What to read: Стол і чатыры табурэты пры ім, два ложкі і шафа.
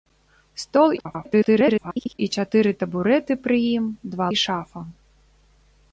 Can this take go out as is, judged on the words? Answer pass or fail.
fail